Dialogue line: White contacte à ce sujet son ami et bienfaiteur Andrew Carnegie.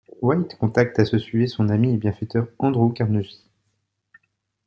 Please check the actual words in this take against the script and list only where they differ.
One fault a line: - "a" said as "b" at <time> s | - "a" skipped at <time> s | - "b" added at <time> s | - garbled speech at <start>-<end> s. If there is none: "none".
none